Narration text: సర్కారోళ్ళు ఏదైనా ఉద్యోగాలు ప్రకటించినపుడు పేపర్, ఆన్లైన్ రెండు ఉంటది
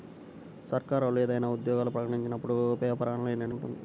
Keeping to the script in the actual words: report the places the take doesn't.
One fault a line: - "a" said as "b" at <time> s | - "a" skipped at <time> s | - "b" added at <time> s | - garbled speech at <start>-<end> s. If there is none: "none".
none